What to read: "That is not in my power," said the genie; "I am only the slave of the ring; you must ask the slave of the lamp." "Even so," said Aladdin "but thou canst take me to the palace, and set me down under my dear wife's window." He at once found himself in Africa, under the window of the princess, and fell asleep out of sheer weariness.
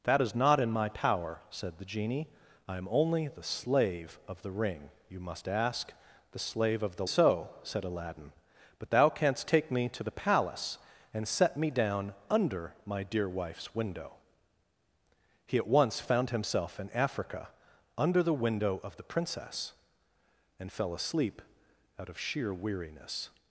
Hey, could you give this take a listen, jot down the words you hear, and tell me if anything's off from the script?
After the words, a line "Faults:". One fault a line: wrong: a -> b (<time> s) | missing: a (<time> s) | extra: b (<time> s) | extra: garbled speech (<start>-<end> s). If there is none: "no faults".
"That is not in my power," said the genie; "I am only the slave of the ring; you must ask the slave of the so," said Aladdin "but thou canst take me to the palace, and set me down under my dear wife's window." He at once found himself in Africa, under the window of the princess, and fell asleep out of sheer weariness.
Faults:
missing: lamp Even (7.0 s)